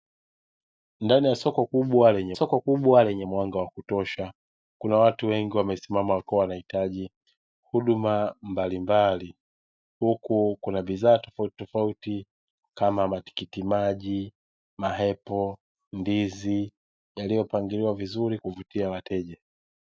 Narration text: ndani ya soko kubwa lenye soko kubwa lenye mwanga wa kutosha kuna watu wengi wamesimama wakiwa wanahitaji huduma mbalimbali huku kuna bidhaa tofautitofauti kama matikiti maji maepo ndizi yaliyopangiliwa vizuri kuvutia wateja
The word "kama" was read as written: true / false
true